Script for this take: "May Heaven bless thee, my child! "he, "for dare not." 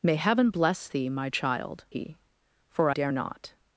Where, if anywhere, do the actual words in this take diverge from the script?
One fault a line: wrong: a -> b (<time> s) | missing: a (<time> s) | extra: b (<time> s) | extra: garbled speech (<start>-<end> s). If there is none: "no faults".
no faults